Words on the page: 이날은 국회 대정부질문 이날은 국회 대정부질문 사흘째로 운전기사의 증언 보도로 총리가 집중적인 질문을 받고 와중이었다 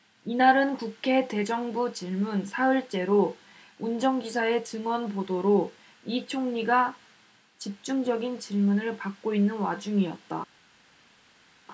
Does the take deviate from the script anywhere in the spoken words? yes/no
yes